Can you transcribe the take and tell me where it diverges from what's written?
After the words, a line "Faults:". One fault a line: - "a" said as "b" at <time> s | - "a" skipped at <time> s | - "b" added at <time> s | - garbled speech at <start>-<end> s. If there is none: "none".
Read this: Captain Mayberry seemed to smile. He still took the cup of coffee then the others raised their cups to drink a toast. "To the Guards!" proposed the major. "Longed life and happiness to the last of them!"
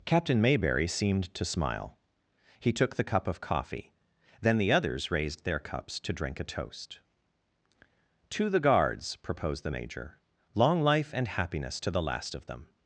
Captain Mayberry seemed to smile. He took the cup of coffee then the others raised their cups to drink a toast. "To the Guards!" proposed the major. "Long life and happiness to the last of them!"
Faults:
- "still" skipped at 2.7 s
- "Longed" said as "Long" at 10.5 s